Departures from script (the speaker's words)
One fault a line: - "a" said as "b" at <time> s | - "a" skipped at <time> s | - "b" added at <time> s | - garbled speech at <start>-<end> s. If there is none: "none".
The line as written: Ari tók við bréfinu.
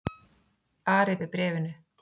- "tók" skipped at 1.2 s